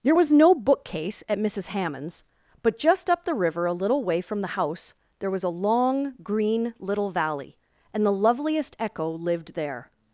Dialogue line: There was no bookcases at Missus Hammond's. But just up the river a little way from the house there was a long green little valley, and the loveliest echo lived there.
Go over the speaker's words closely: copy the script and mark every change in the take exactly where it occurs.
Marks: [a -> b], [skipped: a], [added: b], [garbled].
There was no [bookcases -> bookcase] at Missus Hammond's. But just up the river a little way from the house there was a long green little valley, and the loveliest echo lived there.